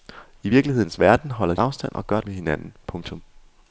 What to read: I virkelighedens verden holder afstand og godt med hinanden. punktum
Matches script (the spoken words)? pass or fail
pass